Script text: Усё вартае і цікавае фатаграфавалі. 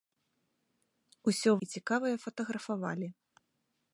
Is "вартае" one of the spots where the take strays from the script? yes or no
yes